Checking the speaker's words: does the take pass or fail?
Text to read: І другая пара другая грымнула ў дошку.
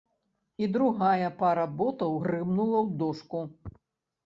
fail